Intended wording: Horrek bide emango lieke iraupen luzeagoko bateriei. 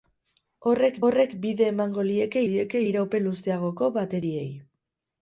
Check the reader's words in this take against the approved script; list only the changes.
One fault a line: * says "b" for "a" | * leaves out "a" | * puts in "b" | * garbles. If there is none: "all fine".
* puts in "horrek"
* puts in "lieke"